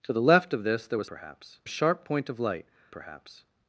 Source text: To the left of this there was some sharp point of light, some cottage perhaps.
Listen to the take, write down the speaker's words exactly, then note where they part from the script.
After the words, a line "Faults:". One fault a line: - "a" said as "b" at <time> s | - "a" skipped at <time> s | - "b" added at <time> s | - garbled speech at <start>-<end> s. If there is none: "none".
To the left of this there was perhaps sharp point of light, perhaps.
Faults:
- "some" said as "perhaps" at 1.0 s
- "some cottage" skipped at 2.7 s